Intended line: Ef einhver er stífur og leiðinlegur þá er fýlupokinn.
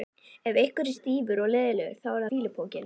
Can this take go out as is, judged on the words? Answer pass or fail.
pass